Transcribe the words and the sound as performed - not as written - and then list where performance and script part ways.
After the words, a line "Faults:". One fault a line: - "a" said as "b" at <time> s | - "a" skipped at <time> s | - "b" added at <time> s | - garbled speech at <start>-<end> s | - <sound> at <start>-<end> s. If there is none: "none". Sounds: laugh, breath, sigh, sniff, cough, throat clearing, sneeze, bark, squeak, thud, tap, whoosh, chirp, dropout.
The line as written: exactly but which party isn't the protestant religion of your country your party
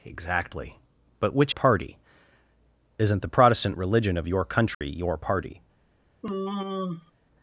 exactly but which party isn't the protestant religion of your country your party
Faults:
- dropout at 4.7-4.8 s
- sigh at 6.2-7.1 s